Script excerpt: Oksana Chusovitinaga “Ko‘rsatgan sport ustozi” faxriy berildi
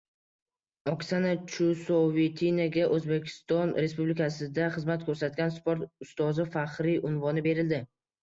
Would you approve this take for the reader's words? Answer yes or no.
no